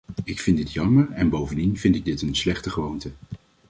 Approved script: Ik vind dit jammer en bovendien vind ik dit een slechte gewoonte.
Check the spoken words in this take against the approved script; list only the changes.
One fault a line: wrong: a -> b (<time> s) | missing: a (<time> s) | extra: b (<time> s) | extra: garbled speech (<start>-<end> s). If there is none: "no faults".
no faults